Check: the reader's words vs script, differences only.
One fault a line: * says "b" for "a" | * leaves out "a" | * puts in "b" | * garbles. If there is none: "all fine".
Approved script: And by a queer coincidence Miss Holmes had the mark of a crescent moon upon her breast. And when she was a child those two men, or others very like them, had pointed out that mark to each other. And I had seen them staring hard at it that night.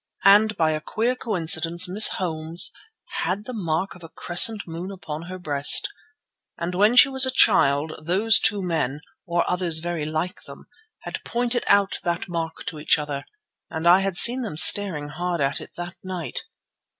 all fine